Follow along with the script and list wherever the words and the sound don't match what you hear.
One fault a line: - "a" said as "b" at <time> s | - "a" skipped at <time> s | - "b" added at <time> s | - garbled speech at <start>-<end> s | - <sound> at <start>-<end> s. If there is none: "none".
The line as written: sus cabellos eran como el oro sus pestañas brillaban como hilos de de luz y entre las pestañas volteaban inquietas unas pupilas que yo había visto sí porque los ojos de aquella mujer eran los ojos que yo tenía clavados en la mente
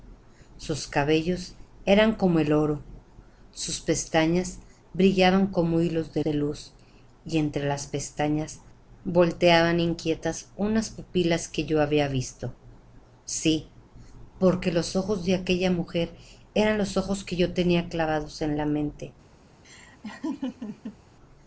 - laugh at 19.6-21.0 s